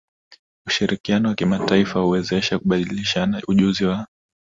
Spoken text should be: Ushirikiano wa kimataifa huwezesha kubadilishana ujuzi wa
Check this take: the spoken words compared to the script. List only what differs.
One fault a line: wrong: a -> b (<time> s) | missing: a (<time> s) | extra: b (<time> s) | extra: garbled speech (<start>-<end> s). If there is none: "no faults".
no faults